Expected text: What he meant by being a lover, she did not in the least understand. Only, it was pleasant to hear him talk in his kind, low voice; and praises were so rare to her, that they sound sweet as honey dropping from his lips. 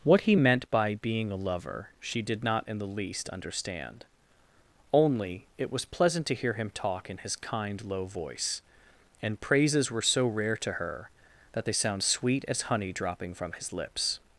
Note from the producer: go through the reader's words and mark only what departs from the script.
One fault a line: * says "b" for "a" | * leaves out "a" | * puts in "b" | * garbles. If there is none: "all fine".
all fine